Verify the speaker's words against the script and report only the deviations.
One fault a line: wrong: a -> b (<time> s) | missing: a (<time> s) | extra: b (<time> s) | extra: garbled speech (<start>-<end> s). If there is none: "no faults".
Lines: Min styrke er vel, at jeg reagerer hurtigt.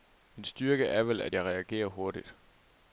no faults